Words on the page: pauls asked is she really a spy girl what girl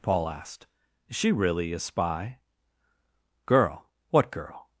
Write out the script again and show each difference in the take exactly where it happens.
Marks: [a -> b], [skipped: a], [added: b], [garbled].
[pauls -> paul] asked is she really a spy girl what girl